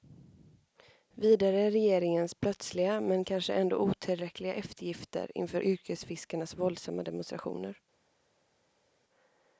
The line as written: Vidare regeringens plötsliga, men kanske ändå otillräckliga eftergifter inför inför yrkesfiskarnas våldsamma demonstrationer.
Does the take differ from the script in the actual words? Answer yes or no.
yes